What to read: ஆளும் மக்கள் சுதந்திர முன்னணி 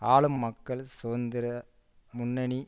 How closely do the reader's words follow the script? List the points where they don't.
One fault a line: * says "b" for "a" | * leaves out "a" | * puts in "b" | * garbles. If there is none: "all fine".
all fine